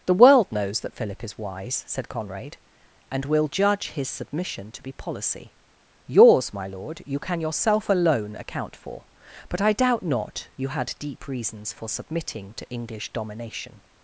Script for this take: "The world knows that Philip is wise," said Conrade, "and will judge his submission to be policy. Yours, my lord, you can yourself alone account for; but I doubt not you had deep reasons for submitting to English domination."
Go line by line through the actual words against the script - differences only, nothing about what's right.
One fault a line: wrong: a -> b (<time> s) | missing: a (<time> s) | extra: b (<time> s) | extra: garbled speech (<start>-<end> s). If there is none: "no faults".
no faults